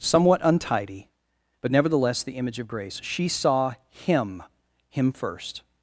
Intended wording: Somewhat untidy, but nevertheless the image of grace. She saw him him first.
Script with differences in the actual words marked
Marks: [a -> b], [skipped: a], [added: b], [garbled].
Somewhat untidy, but nevertheless the image of grace. She saw him him first.